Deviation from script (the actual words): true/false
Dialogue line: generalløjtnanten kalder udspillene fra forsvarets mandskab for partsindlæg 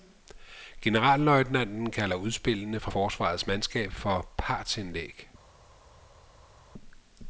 false